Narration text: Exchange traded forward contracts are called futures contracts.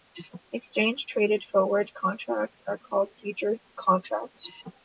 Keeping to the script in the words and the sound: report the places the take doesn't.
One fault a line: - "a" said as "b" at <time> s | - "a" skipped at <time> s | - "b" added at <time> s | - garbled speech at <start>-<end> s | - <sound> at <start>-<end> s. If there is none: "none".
none